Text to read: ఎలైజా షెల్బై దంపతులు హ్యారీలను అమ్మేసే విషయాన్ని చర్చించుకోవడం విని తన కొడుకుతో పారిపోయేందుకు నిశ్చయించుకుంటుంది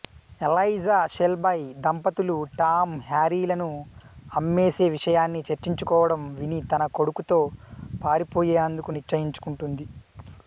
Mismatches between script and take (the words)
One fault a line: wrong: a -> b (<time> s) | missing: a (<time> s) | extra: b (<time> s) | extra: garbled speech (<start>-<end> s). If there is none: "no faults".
extra: టామ్ (2.5 s)